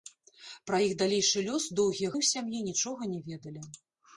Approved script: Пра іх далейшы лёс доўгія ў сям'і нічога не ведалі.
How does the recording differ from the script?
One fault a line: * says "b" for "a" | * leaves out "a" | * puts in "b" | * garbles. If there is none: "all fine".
all fine